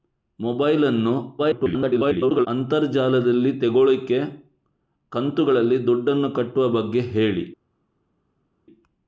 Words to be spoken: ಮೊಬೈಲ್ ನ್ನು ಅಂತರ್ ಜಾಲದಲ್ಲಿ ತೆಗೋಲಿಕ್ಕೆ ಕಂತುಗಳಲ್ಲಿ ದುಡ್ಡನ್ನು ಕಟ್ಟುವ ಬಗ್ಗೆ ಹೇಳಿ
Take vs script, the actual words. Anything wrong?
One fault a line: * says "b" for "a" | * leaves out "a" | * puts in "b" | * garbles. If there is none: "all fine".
* garbles